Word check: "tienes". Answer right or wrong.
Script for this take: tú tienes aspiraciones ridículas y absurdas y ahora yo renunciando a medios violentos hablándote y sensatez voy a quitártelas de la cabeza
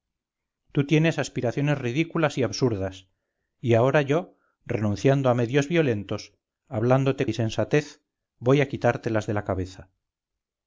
right